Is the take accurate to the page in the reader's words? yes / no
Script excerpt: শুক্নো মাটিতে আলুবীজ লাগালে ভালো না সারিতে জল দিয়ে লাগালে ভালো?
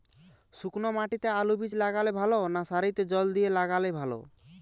yes